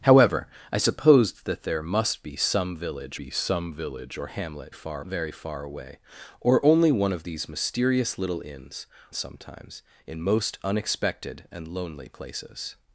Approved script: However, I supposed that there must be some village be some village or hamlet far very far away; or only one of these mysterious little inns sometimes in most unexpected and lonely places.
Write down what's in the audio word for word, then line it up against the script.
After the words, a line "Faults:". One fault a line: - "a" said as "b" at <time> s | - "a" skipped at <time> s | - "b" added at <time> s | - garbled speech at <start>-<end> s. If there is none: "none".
However, I supposed that there must be some village be some village or hamlet far very far away; or only one of these mysterious little inns sometimes in most unexpected and lonely places.
Faults:
none